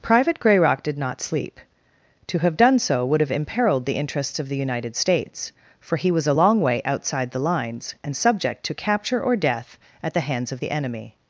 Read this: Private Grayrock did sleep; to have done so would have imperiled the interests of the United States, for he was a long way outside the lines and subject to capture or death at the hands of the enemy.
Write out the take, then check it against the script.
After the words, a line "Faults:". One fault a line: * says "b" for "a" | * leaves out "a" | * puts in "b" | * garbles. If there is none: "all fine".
Private Grayrock did not sleep; to have done so would have imperiled the interests of the United States, for he was a long way outside the lines and subject to capture or death at the hands of the enemy.
Faults:
* puts in "not"